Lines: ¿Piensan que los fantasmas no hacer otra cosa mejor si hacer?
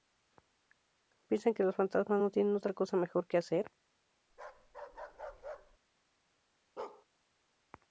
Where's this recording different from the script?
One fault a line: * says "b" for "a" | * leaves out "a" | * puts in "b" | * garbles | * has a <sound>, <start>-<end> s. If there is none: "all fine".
* says "tienen" for "hacer"
* says "que" for "si"
* has a bark, 4.3-5.8 s
* has a bark, 6.8-7.1 s